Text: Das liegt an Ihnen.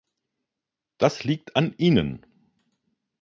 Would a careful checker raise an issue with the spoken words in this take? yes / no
no